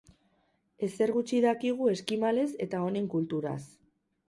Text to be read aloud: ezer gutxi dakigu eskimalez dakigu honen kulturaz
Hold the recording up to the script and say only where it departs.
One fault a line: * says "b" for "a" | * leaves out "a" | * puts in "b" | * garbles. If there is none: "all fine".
* says "eta" for "dakigu"